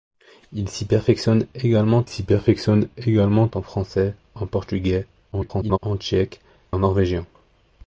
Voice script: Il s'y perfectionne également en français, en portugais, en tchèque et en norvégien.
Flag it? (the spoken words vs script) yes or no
yes